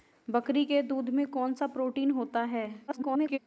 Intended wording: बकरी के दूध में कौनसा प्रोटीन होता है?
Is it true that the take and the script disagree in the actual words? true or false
true